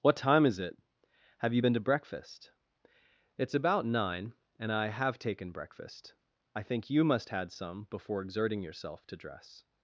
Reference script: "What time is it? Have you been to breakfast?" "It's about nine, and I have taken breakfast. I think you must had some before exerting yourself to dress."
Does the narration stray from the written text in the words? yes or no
no